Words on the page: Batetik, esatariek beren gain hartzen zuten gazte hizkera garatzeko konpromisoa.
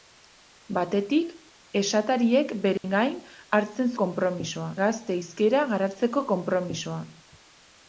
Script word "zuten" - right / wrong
wrong